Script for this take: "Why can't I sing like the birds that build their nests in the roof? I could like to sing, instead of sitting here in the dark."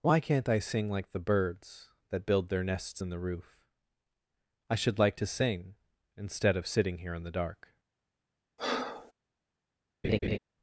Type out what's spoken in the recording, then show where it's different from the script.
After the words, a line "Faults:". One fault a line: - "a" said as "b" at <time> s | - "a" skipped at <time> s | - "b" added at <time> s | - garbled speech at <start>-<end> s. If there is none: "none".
"Why can't I sing like the birds that build their nests in the roof? I should like to sing, instead of sitting here in the dark."
Faults:
- "could" said as "should" at 4.8 s